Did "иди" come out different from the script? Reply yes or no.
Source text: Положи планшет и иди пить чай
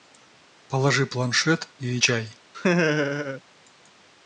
yes